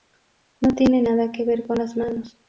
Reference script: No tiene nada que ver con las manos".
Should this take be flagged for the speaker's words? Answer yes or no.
no